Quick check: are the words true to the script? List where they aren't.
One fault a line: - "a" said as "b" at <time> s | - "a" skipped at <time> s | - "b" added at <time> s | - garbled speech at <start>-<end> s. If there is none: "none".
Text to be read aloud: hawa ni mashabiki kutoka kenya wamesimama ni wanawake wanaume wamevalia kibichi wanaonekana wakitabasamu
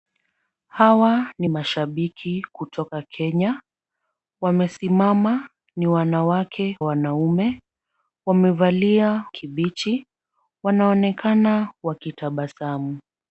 none